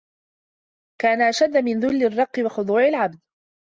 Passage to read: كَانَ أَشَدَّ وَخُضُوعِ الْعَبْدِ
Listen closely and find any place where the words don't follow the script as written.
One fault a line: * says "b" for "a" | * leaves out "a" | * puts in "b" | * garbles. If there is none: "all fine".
* puts in "مِنْ ذُلِّ الرِّقِّ"